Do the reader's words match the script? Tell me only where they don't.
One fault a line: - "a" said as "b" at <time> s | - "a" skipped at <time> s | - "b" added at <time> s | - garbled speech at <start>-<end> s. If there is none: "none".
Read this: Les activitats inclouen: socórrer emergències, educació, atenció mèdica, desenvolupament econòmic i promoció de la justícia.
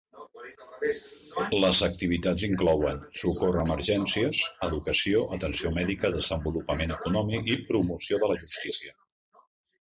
none